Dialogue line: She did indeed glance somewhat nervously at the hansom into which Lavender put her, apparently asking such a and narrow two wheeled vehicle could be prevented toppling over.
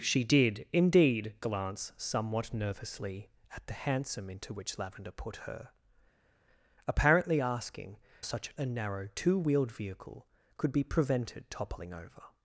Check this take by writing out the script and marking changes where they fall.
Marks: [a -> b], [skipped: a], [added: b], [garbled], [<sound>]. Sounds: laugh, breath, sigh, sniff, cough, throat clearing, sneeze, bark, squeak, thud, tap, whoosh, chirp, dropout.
She did indeed glance somewhat nervously at the hansom into which Lavender put her, apparently asking such a and narrow two wheeled vehicle could be prevented toppling over.